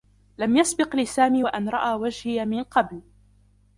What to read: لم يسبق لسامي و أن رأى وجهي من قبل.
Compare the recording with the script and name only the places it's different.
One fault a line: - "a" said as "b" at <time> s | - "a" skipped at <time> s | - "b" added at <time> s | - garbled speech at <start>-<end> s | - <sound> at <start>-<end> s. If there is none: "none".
none